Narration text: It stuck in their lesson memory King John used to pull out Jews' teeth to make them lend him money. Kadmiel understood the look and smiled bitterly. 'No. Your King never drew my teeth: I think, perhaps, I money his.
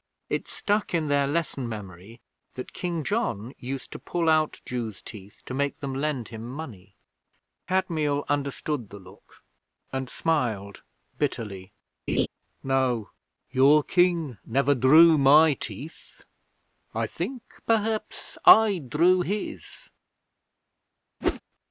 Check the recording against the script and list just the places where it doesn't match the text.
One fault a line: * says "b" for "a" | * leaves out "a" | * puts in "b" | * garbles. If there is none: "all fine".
* puts in "that"
* says "drew" for "money"